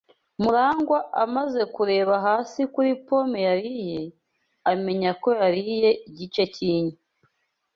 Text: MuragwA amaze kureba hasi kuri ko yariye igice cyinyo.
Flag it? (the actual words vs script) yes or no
yes